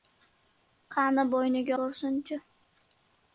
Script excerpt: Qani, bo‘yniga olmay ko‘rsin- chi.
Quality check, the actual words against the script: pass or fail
fail